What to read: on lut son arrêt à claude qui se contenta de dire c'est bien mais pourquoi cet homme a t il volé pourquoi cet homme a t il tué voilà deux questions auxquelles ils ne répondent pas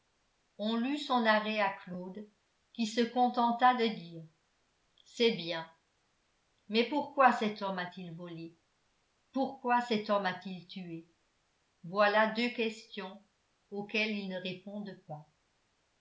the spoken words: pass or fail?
pass